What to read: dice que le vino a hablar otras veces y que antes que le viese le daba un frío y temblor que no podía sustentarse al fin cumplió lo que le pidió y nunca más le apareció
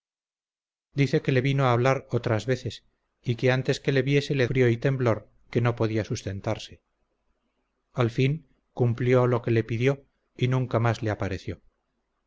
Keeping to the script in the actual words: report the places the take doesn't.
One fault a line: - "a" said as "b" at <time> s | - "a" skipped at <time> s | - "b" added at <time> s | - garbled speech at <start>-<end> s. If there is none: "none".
- "daba un" skipped at 4.5 s